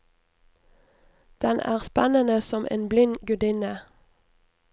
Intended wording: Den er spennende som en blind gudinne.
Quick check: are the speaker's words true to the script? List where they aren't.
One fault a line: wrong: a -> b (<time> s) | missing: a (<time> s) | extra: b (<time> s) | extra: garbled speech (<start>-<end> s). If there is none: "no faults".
no faults